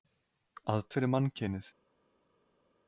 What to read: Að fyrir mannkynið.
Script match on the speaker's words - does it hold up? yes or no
yes